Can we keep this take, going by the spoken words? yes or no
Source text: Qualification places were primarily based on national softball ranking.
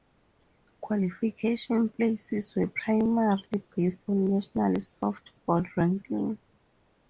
yes